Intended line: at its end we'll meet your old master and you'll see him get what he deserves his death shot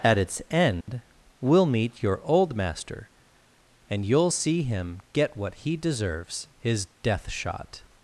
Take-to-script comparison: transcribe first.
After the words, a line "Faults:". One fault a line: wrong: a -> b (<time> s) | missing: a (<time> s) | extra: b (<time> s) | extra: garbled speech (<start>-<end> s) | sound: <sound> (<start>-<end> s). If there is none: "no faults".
at its end we'll meet your old master and you'll see him get what he deserves his death shot
Faults:
sound: dropout (0.8-0.9 s)